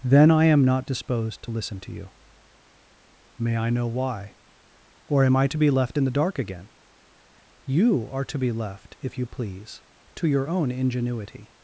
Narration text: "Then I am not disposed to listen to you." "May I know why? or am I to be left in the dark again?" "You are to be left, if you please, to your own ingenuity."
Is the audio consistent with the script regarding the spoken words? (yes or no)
yes